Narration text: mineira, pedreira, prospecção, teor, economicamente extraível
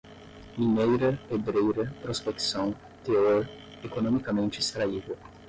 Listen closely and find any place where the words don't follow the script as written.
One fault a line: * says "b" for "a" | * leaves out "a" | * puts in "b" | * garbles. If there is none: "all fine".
all fine